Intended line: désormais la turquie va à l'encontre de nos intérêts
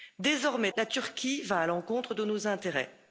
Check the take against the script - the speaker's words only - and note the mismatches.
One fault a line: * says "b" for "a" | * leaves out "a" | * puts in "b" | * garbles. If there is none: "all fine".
all fine